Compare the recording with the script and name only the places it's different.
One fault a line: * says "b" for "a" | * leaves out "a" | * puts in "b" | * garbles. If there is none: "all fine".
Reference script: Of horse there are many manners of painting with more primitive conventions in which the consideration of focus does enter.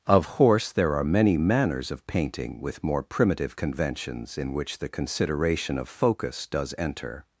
all fine